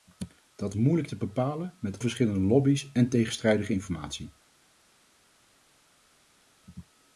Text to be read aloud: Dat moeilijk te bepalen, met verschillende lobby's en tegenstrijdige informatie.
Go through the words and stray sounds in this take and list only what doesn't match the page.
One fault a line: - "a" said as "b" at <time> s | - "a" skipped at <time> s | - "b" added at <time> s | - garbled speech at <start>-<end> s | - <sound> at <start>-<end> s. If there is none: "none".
none